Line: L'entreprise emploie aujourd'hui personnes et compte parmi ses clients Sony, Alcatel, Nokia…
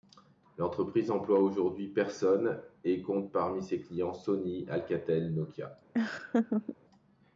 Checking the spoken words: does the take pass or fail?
pass